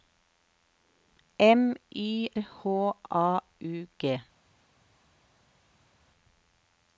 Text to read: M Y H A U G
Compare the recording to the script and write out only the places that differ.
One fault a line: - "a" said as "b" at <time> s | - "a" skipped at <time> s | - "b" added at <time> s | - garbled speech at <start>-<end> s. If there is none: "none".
none